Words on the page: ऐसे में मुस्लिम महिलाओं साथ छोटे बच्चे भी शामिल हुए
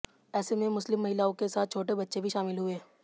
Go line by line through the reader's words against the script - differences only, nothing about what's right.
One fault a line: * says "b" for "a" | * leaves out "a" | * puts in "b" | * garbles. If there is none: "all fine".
* puts in "के"